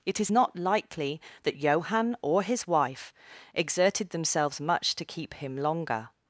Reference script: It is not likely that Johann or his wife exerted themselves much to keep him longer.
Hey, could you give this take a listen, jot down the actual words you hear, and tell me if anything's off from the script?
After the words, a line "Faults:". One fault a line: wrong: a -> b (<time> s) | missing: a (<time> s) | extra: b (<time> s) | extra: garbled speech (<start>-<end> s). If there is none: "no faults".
It is not likely that Johann or his wife exerted themselves much to keep him longer.
Faults:
no faults